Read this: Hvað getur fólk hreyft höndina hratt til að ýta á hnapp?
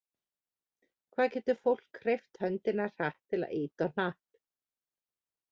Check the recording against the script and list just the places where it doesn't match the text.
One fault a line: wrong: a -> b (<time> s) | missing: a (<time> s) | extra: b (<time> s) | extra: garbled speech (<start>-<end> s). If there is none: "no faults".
no faults